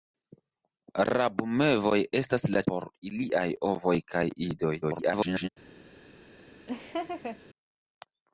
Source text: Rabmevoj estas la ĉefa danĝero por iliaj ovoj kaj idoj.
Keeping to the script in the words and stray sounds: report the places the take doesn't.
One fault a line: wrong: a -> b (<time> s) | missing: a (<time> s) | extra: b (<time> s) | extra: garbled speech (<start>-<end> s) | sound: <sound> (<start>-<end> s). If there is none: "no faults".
missing: ĉefa danĝero (2.6 s)
extra: garbled speech (4.8-5.5 s)
sound: laugh (6.7-7.4 s)